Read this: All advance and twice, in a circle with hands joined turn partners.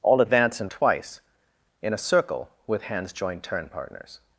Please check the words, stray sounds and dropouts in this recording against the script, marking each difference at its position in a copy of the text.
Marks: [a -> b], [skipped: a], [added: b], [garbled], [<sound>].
All advance and twice, in a circle with hands joined turn partners.